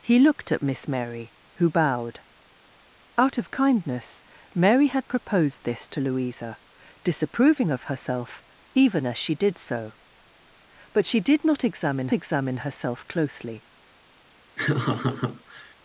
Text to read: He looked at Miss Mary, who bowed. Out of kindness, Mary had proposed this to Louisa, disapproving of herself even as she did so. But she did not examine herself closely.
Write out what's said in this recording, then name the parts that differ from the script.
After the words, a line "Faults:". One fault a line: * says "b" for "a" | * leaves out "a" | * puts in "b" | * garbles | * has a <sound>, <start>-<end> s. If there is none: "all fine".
He looked at Miss Mary, who bowed. Out of kindness, Mary had proposed this to Louisa, disapproving of herself even as she did so. But she did not examine examine herself closely.
Faults:
* puts in "examine"
* has a laugh, 14.6-15.7 s